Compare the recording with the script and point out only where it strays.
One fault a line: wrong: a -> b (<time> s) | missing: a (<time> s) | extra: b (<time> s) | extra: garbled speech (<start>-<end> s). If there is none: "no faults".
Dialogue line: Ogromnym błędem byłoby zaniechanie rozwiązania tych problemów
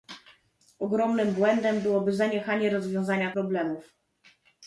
missing: tych (3.3 s)